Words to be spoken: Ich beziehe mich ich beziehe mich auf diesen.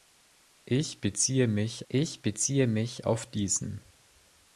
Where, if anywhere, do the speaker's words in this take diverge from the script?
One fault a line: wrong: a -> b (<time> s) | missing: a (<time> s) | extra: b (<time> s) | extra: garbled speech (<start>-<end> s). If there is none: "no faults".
no faults